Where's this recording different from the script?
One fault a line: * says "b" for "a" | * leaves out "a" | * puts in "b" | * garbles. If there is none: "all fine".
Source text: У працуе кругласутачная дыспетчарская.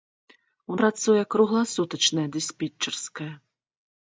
all fine